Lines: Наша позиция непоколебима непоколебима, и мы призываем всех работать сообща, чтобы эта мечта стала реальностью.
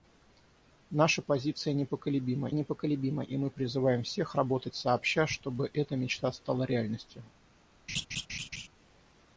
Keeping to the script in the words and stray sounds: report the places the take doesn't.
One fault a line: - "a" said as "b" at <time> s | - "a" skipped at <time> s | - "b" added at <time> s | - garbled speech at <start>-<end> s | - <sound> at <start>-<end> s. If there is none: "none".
- laugh at 7.9-8.7 s